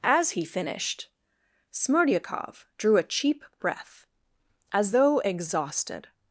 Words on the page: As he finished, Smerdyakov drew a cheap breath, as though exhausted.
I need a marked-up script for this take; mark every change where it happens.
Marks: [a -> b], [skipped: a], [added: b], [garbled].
As he finished, Smerdyakov drew a cheap breath, as though exhausted.